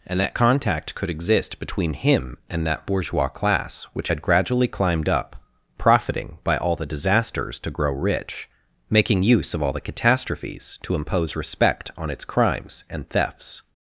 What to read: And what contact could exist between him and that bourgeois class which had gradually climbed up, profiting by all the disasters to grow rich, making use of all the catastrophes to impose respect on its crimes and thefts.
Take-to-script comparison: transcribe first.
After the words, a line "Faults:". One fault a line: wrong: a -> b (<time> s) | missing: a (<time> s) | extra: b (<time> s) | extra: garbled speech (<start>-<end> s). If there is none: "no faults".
And that contact could exist between him and that bourgeois class which had gradually climbed up, profiting by all the disasters to grow rich, making use of all the catastrophes to impose respect on its crimes and thefts.
Faults:
wrong: what -> that (0.2 s)